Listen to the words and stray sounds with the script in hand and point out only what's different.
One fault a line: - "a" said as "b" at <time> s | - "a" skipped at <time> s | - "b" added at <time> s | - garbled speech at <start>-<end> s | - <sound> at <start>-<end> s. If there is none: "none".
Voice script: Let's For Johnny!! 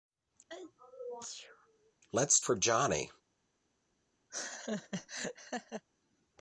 - sneeze at 0.5-1.9 s
- laugh at 4.3-5.8 s